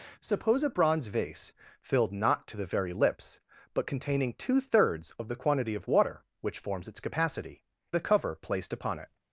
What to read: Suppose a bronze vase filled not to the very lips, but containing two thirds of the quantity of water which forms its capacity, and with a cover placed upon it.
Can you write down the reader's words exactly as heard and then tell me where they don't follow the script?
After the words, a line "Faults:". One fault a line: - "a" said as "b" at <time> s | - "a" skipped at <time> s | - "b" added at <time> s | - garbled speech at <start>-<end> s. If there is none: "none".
Suppose a bronze vase filled not to the very lips, but containing two thirds of the quantity of water which forms its capacity, a cover placed upon it.
Faults:
- "and with" skipped at 7.7 s